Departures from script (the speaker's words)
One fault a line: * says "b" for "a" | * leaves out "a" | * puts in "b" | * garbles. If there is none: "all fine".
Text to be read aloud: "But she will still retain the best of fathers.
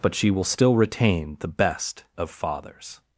all fine